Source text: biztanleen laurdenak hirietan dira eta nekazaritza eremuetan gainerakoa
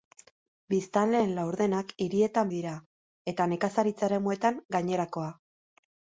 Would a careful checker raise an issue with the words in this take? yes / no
no